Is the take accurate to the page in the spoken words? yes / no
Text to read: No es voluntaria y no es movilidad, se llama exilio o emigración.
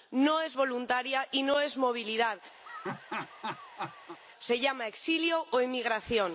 yes